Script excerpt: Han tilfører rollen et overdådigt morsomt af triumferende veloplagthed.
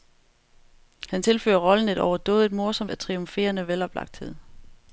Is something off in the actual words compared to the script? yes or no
no